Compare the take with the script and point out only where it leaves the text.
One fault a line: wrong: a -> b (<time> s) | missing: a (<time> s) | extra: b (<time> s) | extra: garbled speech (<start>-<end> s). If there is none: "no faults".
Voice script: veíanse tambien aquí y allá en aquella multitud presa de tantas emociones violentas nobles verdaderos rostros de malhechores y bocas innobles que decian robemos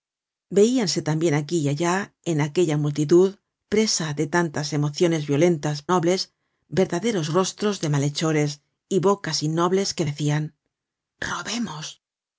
no faults